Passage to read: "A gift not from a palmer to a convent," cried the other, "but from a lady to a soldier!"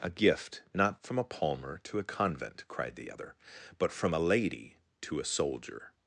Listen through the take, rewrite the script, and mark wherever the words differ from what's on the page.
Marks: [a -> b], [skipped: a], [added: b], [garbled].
"A gift not from a palmer to a convent," cried the other, "but from a lady to a soldier!"